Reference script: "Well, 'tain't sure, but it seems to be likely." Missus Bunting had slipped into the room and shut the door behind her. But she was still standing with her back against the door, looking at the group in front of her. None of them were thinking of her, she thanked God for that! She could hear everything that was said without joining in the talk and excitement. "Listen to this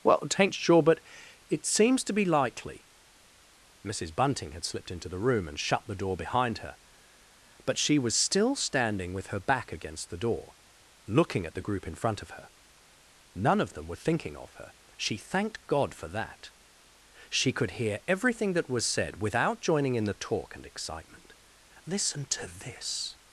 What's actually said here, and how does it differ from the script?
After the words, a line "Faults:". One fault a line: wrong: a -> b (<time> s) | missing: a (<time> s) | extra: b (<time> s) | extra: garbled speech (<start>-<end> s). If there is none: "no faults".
"Well, 'tain't sure, but it seems to be likely." Missus Bunting had slipped into the room and shut the door behind her. But she was still standing with her back against the door, looking at the group in front of her. None of them were thinking of her, she thanked God for that! She could hear everything that was said without joining in the talk and excitement. "Listen to this
Faults:
no faults